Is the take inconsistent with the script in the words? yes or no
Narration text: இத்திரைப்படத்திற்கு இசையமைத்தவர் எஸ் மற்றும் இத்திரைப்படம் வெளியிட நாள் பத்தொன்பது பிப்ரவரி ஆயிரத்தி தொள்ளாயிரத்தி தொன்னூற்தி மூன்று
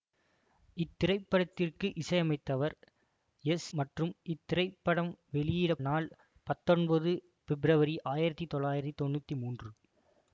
no